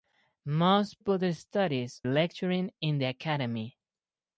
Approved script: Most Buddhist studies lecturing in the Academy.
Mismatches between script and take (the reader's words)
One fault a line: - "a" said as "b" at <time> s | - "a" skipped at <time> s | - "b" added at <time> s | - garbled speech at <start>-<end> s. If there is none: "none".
none